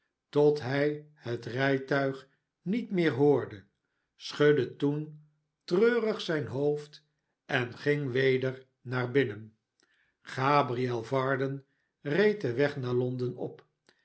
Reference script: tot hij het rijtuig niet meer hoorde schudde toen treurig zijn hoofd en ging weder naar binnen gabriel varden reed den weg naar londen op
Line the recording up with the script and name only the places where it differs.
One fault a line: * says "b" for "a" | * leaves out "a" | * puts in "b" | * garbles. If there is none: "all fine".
all fine